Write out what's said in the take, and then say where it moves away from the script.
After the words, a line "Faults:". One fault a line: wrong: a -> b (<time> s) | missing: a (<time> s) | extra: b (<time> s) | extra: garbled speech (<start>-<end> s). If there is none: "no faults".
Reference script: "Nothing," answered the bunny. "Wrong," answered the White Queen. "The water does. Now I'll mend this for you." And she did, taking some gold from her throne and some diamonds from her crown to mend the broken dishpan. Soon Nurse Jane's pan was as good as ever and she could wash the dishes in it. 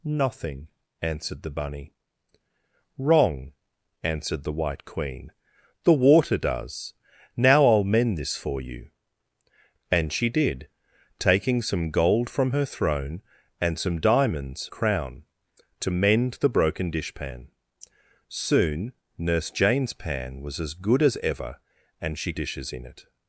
"Nothing," answered the bunny. "Wrong," answered the White Queen. "The water does. Now I'll mend this for you." And she did, taking some gold from her throne and some diamonds crown to mend the broken dishpan. Soon Nurse Jane's pan was as good as ever and she dishes in it.
Faults:
missing: from her (14.7 s)
missing: could wash the (22.3 s)